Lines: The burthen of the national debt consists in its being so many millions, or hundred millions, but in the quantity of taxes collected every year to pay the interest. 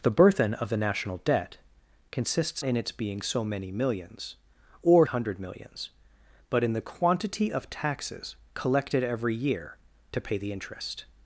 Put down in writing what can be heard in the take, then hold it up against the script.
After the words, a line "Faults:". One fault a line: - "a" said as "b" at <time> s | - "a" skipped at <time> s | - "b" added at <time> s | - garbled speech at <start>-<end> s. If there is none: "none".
The burthen of the national debt consists in its being so many millions, or hundred millions, but in the quantity of taxes collected every year to pay the interest.
Faults:
none